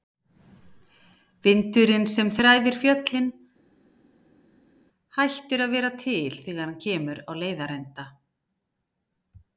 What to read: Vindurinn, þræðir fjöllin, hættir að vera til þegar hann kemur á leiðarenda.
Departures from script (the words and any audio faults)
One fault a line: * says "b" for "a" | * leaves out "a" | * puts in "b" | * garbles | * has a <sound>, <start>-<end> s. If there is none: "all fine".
* puts in "sem"